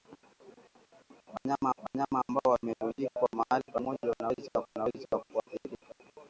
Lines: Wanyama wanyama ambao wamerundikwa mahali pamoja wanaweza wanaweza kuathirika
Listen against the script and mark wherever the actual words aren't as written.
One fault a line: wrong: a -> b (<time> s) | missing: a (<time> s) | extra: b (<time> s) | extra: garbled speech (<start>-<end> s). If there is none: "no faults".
no faults